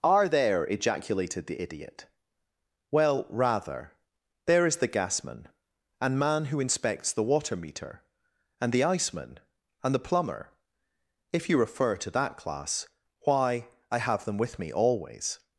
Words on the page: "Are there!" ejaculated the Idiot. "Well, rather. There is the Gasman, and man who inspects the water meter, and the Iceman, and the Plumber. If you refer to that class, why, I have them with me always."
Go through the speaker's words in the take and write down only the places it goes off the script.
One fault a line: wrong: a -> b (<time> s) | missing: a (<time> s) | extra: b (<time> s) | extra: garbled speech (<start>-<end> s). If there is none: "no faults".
no faults